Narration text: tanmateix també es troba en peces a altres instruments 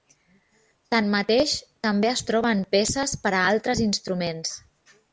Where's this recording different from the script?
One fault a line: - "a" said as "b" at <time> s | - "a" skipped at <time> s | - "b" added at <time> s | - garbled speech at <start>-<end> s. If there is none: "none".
- "per" added at 3.3 s